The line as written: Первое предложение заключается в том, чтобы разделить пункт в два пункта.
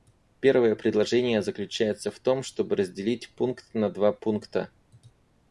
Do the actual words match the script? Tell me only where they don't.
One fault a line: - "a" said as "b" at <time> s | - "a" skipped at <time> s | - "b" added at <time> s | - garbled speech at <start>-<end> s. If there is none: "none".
- "в" said as "на" at 3.8 s